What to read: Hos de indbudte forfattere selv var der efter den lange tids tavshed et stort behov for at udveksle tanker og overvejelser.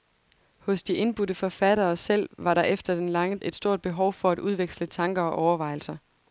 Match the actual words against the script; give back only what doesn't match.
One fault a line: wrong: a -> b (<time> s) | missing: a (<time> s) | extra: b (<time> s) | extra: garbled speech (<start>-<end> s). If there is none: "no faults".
missing: tids tavshed (3.4 s)